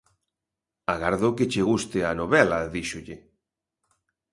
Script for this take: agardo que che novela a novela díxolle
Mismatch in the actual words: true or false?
true